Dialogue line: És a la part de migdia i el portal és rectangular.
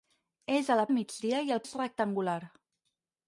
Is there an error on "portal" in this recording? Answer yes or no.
yes